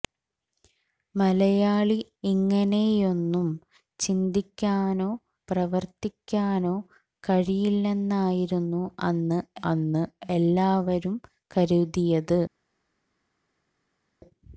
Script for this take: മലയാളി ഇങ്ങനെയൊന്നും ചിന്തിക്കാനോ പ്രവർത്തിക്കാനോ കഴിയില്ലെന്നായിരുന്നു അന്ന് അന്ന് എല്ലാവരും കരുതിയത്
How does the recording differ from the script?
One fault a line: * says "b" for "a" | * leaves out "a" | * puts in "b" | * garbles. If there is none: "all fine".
all fine